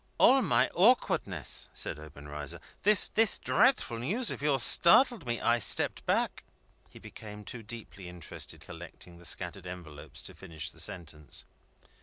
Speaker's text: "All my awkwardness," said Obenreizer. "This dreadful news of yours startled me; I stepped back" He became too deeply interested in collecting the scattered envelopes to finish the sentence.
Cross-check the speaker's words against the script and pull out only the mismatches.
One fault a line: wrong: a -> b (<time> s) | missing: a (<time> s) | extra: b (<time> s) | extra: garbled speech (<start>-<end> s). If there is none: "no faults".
extra: this (3.1 s)
missing: in (8.6 s)